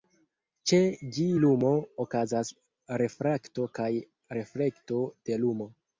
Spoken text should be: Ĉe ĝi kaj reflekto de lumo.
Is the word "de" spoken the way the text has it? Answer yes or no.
yes